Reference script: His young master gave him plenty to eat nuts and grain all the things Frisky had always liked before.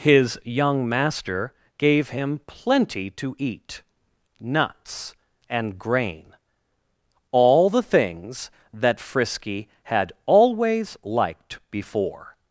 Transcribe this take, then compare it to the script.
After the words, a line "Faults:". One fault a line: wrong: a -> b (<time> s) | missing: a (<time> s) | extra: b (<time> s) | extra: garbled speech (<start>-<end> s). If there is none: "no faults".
His young master gave him plenty to eat nuts and grain all the things that Frisky had always liked before.
Faults:
extra: that (8.7 s)